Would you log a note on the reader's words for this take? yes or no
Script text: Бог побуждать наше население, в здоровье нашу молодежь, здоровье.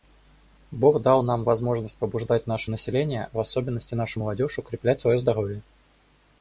yes